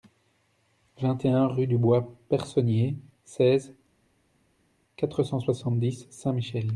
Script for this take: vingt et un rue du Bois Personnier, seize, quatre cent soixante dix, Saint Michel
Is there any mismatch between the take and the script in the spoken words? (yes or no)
no